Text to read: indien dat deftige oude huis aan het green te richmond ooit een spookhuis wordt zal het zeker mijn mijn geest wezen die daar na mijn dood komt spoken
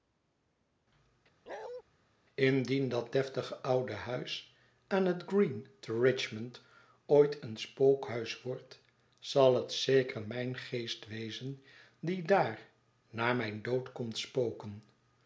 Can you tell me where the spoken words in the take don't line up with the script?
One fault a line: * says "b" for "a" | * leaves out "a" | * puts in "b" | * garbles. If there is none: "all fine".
* leaves out "mijn"